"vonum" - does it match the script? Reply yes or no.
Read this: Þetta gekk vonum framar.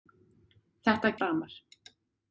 no